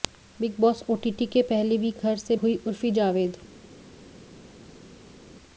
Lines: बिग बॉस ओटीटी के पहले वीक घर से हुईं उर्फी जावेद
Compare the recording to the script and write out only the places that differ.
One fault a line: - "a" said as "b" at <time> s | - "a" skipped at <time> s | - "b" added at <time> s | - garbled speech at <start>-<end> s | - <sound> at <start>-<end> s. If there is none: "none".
none